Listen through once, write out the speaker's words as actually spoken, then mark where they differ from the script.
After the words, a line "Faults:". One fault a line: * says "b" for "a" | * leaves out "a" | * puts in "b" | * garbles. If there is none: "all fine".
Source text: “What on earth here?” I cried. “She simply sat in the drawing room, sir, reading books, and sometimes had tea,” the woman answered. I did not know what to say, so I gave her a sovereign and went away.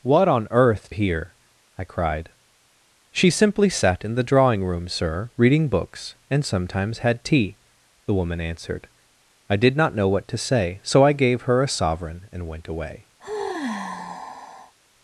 “What on earth here?” I cried. “She simply sat in the drawing room, sir, reading books, and sometimes had tea,” the woman answered. I did not know what to say, so I gave her a sovereign and went away.
Faults:
all fine